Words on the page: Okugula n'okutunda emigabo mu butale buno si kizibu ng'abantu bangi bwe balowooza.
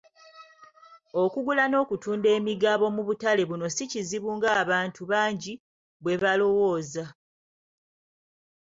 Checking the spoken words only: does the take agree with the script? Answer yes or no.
yes